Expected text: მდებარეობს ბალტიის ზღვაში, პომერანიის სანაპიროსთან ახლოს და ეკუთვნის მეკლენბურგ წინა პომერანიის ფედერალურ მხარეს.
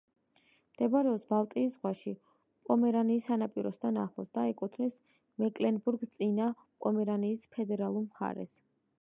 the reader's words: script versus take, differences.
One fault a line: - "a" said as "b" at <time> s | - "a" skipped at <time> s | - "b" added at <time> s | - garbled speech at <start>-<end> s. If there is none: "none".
none